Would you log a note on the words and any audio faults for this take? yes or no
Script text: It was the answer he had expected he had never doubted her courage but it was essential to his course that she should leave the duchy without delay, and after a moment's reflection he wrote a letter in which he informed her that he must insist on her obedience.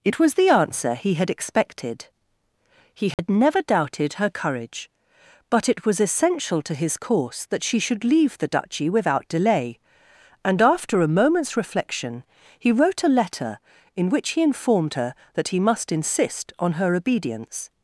yes